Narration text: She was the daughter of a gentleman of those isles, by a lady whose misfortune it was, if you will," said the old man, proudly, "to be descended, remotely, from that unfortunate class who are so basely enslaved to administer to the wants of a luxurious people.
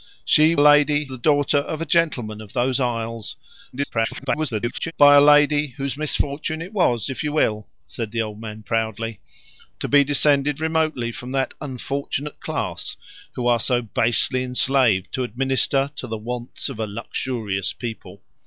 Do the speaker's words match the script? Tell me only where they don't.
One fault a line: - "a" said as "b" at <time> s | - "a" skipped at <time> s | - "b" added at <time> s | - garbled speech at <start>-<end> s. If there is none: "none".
- "was" said as "lady" at 0.6 s
- garbled speech at 3.7-4.9 s